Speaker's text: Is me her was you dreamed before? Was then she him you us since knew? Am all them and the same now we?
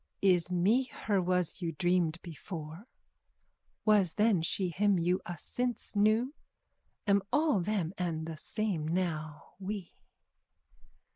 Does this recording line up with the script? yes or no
yes